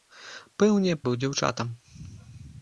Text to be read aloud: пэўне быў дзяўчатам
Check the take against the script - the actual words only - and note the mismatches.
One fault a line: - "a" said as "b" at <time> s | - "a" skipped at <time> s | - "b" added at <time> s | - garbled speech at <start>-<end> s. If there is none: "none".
none